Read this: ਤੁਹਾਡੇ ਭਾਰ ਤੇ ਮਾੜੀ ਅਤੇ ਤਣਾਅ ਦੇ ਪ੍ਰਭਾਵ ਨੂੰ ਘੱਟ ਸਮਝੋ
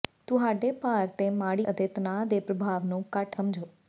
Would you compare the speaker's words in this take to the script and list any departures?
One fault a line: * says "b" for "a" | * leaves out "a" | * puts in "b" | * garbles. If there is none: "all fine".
all fine